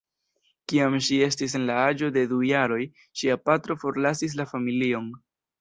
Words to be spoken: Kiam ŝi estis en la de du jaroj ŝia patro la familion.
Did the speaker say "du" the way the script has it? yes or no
yes